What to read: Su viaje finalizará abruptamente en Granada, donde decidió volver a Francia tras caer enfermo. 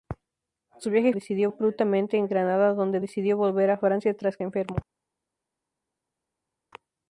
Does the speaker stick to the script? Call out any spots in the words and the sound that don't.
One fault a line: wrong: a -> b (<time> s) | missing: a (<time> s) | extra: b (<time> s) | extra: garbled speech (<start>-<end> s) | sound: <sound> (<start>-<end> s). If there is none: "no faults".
wrong: finalizará -> decidió (1.1 s)
missing: caer (4.4 s)